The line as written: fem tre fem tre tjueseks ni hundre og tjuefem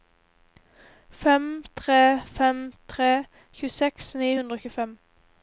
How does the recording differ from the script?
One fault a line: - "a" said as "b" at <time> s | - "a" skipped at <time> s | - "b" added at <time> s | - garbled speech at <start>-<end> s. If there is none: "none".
none